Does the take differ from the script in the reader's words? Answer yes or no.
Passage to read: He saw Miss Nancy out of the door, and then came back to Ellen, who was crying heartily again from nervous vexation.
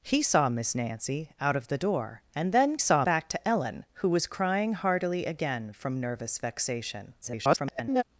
yes